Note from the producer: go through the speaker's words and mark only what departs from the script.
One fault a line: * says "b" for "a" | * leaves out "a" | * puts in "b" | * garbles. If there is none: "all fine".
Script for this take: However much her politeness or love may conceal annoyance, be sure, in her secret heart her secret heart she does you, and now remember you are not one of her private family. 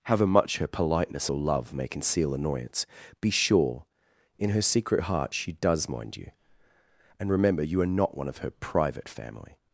* leaves out "her secret heart"
* puts in "mind"
* leaves out "now"